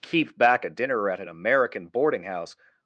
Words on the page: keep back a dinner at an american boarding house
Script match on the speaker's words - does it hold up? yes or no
yes